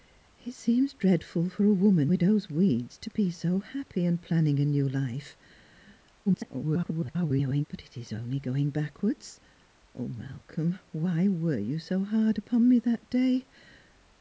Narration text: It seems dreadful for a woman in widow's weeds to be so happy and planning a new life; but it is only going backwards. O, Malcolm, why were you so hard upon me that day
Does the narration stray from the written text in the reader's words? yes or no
yes